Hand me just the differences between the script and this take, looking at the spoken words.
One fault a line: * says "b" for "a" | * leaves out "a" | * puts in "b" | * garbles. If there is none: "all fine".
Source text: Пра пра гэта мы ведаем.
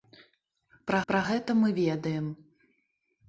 all fine